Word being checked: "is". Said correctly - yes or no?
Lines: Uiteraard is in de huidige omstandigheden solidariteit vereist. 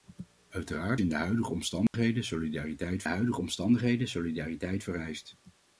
no